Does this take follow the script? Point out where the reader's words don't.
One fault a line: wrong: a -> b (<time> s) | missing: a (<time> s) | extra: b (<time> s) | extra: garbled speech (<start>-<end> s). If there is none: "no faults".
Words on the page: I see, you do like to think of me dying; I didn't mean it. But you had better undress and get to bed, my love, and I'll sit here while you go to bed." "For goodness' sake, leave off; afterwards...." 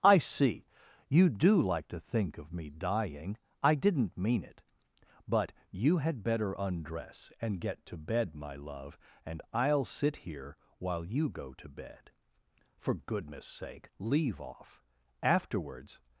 no faults